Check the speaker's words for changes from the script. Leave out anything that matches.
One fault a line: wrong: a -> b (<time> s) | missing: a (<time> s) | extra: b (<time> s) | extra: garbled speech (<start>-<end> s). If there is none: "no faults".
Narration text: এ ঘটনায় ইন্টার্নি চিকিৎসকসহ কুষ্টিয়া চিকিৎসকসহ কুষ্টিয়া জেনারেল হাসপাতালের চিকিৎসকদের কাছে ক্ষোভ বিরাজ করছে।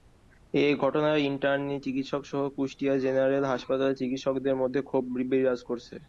missing: চিকিৎসকসহ কুষ্টিয়া (2.9 s)
wrong: কাছে -> মধ্যে (4.6 s)